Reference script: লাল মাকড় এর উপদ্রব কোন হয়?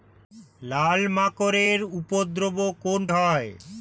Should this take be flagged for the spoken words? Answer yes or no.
no